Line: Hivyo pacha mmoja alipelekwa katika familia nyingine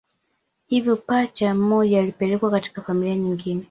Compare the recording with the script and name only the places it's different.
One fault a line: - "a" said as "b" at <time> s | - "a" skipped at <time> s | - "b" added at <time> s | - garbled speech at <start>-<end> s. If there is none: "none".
none